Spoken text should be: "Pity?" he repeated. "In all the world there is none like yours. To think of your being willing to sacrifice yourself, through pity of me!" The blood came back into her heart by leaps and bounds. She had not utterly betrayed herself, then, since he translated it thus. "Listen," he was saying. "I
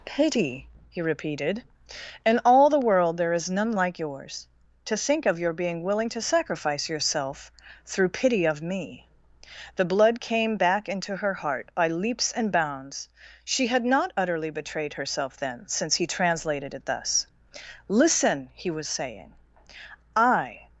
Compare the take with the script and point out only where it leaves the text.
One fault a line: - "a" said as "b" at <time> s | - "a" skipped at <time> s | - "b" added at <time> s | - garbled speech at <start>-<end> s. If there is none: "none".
none